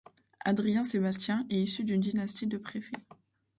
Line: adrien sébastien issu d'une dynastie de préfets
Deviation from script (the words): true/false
true